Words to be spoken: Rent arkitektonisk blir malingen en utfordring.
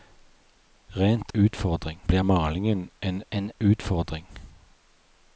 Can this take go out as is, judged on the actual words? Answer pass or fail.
fail